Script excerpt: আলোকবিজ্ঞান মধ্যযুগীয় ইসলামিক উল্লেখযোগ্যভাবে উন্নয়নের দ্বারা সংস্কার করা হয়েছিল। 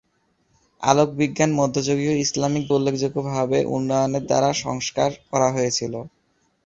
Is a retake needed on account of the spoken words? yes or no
no